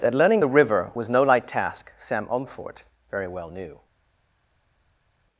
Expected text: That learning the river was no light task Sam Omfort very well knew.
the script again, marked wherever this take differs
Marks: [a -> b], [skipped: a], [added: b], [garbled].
That learning the river was no light task Sam Omfort very well knew.